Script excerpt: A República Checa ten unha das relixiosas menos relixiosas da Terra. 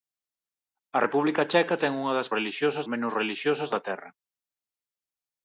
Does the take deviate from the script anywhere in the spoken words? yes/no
no